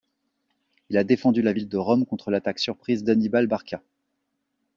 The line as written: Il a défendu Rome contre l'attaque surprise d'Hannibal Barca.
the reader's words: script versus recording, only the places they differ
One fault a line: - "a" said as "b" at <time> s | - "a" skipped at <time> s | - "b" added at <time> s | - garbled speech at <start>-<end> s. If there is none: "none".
- "la ville de" added at 1.4 s